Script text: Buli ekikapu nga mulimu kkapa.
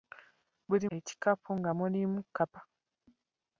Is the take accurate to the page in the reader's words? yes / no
yes